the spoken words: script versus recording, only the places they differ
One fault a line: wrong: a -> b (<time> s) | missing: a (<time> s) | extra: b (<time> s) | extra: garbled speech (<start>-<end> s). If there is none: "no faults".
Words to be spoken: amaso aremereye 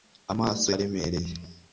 no faults